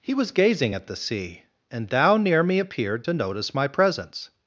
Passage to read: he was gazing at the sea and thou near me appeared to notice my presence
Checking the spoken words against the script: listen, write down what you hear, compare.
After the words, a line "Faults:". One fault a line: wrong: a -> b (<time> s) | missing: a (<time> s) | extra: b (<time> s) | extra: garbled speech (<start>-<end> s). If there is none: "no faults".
he was gazing at the sea and thou near me appeared to notice my presence
Faults:
no faults